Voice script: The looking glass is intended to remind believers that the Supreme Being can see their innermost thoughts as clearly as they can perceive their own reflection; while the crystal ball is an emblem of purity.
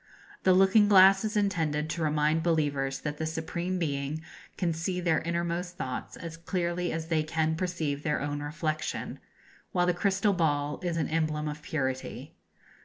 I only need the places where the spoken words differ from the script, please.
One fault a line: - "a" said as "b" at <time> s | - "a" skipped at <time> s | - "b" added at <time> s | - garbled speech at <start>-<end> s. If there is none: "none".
none